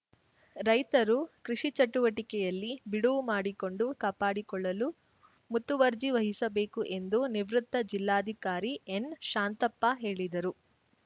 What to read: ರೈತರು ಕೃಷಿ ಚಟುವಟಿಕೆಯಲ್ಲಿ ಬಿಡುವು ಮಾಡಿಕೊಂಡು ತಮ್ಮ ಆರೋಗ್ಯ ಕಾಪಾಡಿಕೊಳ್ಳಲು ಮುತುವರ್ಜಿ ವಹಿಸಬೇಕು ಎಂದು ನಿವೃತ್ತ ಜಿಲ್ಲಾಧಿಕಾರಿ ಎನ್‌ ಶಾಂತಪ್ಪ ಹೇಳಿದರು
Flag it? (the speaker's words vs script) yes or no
yes